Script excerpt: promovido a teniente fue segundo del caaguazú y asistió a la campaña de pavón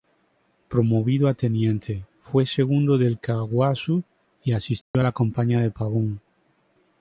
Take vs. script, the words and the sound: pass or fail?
fail